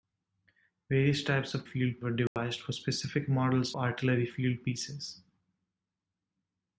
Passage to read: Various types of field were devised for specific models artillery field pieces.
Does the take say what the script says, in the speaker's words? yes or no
yes